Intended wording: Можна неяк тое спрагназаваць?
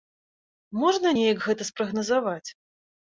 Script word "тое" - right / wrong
wrong